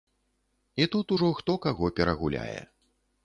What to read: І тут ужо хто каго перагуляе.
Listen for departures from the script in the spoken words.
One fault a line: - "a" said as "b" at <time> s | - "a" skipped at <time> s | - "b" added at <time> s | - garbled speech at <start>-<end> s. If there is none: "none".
none